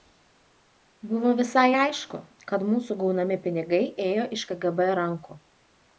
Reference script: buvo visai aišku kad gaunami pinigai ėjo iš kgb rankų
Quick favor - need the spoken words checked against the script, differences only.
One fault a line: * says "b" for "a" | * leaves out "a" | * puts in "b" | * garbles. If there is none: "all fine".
* puts in "mūsų"